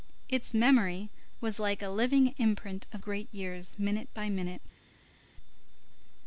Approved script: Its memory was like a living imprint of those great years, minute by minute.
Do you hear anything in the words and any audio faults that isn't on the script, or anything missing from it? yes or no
yes